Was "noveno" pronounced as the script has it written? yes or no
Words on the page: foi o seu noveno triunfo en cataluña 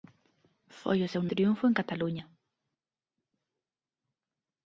no